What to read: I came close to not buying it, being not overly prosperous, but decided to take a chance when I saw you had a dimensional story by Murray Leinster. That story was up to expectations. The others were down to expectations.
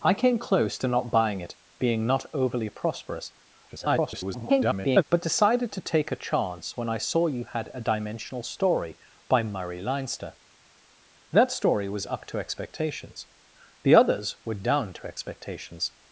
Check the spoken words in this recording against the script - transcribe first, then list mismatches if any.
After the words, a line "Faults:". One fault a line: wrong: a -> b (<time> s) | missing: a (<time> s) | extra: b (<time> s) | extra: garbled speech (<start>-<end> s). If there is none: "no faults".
I came close to not buying it, being not overly prosperous, [garbled] but decided to take a chance when I saw you had a dimensional story by Murray Leinster. That story was up to expectations. The others were down to expectations.
Faults:
extra: garbled speech (3.7-5.0 s)